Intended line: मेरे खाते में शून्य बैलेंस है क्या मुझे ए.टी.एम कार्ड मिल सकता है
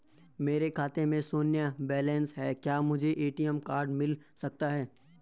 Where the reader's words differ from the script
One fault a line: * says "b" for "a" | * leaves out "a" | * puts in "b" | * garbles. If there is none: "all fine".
all fine